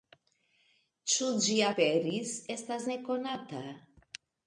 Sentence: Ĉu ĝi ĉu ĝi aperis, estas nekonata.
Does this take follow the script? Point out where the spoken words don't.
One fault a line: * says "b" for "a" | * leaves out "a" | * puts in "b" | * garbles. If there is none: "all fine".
* leaves out "ĉu ĝi"